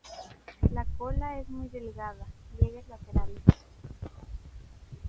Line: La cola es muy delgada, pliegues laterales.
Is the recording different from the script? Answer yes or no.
no